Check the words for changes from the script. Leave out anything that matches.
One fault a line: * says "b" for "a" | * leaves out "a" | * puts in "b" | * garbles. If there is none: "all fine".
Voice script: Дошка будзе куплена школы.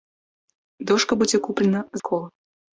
all fine